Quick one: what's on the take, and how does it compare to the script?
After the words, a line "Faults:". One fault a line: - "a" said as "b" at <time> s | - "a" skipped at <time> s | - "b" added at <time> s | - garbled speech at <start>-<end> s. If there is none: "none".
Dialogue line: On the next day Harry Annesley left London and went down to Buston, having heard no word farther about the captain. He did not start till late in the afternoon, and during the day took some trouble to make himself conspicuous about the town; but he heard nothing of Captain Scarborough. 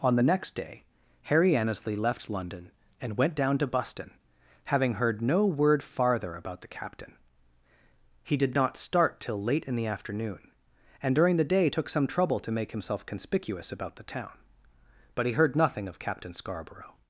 On the next day Harry Annesley left London and went down to Buston, having heard no word farther about the captain. He did not start till late in the afternoon, and during the day took some trouble to make himself conspicuous about the town; but he heard nothing of Captain Scarborough.
Faults:
none